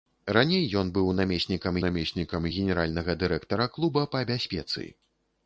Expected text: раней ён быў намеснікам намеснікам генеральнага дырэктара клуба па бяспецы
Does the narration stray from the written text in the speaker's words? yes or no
no